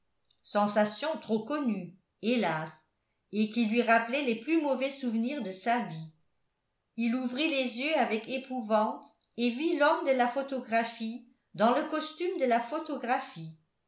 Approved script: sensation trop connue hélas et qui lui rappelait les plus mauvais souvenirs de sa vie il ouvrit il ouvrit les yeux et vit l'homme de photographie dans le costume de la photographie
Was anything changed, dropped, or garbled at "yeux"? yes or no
yes